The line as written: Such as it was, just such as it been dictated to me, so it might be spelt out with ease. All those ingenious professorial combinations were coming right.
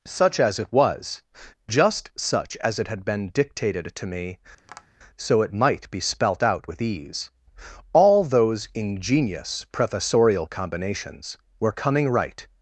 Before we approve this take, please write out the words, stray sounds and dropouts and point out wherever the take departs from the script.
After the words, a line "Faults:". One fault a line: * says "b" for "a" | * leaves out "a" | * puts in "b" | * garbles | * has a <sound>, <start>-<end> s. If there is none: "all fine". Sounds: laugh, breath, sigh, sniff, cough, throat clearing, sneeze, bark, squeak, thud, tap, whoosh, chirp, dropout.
Such as it was, just such as it had been dictated to me, so it might be spelt out with ease. All those ingenious professorial combinations were coming right.
Faults:
* puts in "had"
* has a tap, 4.6-4.9 s